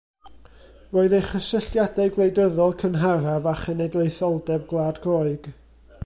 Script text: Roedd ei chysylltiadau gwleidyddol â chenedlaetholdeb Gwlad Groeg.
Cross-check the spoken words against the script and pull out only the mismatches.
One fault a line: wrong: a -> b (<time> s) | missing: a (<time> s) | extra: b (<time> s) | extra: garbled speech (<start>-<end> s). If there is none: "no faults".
extra: cynharaf (2.8 s)